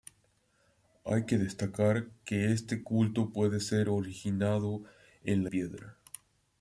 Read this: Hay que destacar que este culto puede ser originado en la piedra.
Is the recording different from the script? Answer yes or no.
no